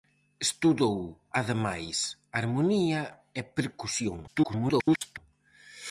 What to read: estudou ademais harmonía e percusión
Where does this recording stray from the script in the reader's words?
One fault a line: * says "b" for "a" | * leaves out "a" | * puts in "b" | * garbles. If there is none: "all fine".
* garbles